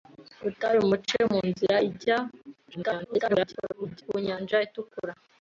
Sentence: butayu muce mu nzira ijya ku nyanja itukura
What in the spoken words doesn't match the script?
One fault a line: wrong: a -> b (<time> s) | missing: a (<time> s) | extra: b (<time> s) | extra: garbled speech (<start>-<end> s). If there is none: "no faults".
extra: garbled speech (2.7-4.0 s)